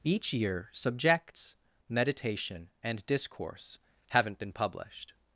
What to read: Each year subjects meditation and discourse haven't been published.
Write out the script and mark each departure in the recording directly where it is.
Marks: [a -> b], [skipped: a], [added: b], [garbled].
Each year subjects meditation and discourse haven't been published.